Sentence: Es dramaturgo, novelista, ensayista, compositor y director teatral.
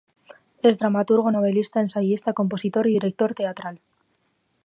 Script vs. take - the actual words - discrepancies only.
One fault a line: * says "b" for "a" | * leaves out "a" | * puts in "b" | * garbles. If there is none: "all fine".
all fine